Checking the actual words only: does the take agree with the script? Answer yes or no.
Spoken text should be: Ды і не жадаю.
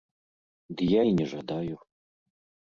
no